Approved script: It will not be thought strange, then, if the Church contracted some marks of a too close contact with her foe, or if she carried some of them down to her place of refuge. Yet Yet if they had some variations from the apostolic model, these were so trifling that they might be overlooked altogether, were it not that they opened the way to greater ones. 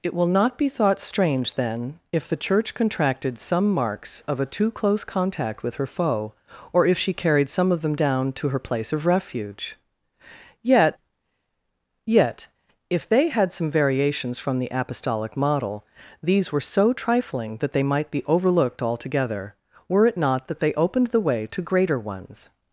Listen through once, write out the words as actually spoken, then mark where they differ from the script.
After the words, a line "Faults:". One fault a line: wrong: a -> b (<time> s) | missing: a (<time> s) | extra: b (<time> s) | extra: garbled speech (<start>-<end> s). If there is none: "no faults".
It will not be thought strange, then, if the Church contracted some marks of a too close contact with her foe, or if she carried some of them down to her place of refuge. Yet Yet if they had some variations from the apostolic model, these were so trifling that they might be overlooked altogether, were it not that they opened the way to greater ones.
Faults:
no faults